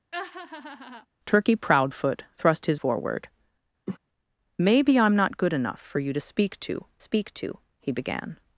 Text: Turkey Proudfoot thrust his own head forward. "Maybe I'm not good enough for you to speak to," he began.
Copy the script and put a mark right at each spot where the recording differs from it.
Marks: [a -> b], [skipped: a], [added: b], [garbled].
Turkey Proudfoot thrust his [skipped: own head] forward. "Maybe I'm not good enough for you to speak to," [added: speak to] he began.